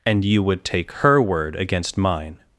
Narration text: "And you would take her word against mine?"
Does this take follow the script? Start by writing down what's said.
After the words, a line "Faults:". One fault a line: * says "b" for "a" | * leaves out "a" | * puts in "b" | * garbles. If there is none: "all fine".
"And you would take her word against mine?"
Faults:
all fine